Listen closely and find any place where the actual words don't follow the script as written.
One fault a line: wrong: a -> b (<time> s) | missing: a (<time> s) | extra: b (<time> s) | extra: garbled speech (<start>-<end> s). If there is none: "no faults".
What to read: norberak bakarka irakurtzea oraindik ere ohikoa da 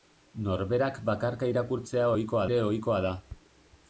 wrong: oraindik -> ohikoa (2.2 s)